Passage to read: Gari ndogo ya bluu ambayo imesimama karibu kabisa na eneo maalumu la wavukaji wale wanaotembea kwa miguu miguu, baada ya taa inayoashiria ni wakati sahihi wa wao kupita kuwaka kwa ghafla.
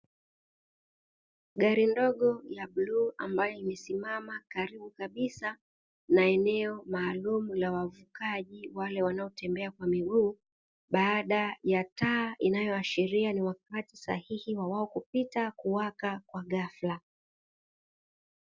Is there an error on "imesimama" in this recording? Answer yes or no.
no